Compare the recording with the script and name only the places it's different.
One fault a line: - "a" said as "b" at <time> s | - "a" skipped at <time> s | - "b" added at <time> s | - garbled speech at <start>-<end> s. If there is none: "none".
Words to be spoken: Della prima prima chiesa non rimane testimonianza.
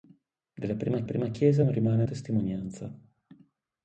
none